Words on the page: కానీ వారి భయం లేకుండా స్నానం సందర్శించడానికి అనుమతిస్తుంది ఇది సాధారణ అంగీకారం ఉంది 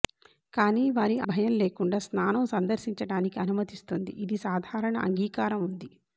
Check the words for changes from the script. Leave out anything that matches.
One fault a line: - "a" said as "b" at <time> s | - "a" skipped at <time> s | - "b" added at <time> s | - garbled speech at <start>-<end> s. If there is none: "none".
none